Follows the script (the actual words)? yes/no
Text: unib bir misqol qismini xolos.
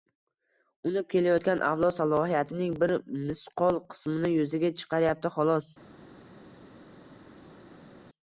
no